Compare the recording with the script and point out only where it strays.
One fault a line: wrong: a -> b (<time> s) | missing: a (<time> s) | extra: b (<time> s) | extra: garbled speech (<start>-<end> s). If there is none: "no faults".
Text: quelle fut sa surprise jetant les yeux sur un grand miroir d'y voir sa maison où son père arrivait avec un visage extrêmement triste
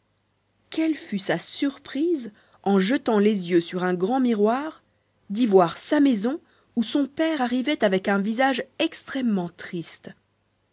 extra: en (2.6 s)